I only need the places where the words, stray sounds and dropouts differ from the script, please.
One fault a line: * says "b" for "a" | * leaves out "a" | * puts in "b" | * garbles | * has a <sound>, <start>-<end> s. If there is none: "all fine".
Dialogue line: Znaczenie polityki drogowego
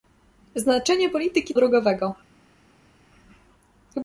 all fine